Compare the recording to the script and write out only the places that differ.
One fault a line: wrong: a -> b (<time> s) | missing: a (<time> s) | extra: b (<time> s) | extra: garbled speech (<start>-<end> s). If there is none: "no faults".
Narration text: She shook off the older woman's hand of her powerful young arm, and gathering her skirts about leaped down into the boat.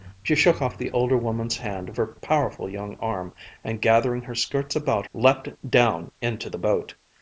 no faults